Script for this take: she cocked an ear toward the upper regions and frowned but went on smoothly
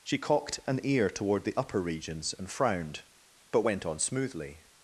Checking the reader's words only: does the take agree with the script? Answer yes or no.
yes